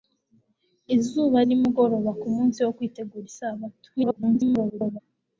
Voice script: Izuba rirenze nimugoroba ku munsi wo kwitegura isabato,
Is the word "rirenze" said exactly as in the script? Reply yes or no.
no